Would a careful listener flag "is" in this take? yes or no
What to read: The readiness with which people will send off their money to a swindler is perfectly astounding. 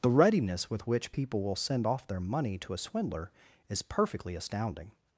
no